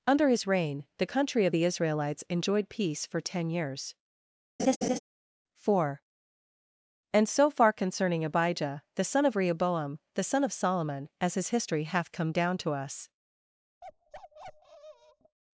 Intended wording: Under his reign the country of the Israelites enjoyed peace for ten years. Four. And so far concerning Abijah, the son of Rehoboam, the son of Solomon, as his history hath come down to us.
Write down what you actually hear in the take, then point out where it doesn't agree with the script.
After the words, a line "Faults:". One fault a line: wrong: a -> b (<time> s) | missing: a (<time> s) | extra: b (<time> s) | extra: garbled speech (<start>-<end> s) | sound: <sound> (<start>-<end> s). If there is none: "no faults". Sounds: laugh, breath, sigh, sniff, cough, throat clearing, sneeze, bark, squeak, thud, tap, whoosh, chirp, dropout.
Under his reign the country of the Israelites enjoyed peace for ten years. Four. And so far concerning Abijah, the son of Rehoboam, the son of Solomon, as his history hath come down to us.
Faults:
sound: laugh (4.6-5.0 s)
sound: bark (13.8-15.4 s)